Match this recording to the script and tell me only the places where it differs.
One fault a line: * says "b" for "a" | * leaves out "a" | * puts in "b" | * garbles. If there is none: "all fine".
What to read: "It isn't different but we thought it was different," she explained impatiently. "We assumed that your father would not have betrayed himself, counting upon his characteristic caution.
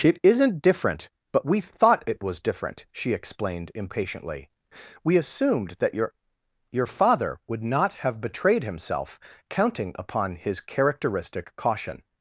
* puts in "your"